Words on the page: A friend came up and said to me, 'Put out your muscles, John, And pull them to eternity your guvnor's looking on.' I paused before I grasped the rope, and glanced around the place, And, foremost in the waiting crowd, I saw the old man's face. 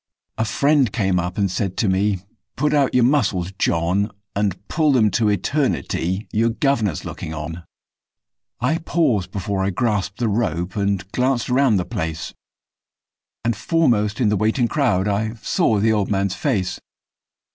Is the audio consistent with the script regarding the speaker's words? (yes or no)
yes